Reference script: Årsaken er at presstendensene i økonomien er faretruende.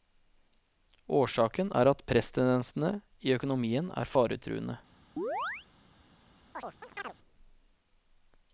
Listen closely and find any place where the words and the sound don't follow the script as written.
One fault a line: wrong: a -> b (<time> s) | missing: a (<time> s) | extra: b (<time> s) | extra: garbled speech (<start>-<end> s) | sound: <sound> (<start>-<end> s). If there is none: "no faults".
sound: chirp (5.2-5.7 s)
sound: chirp (6.5-7.1 s)